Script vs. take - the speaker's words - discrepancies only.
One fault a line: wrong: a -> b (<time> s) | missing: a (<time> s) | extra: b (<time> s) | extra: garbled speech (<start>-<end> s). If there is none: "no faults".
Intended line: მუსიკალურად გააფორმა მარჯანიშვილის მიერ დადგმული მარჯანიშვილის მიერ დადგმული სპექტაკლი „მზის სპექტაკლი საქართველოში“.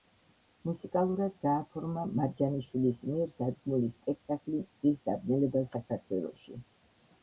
missing: მარჯანიშვილის მიერ დადგმული (3.9 s)
wrong: სპექტაკლი -> დაბნელება (5.1 s)